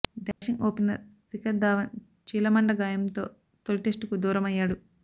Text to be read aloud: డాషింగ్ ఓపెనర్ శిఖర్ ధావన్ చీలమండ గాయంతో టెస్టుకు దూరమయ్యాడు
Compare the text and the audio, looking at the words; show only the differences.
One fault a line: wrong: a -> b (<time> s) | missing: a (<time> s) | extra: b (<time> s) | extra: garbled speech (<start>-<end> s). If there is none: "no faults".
extra: తొలి (3.6 s)